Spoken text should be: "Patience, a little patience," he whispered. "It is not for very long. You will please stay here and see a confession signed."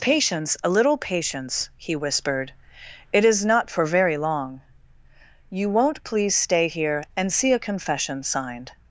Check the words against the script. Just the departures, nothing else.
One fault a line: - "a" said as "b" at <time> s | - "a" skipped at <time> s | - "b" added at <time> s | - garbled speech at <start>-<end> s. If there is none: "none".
- "will" said as "won't" at 5.7 s